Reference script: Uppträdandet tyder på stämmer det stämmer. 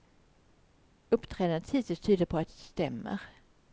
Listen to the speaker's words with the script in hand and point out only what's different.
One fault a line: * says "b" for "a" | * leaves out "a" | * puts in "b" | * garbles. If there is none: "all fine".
* puts in "hittills"
* says "att" for "stämmer"